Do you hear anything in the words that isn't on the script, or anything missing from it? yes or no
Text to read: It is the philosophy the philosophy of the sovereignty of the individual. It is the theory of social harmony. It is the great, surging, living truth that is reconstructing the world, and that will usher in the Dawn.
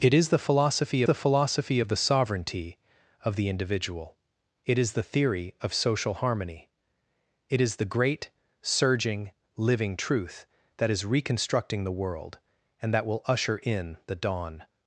no